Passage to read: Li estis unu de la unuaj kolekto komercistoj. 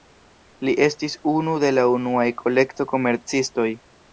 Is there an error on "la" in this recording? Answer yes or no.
no